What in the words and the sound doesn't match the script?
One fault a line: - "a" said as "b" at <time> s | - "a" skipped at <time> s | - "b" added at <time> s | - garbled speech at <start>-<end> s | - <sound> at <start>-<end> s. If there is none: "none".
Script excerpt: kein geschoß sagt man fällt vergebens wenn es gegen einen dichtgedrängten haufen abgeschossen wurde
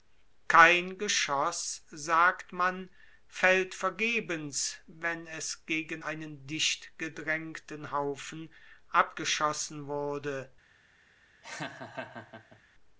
- laugh at 11.4-12.6 s